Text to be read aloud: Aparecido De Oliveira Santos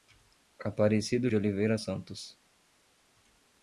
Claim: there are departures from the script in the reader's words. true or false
false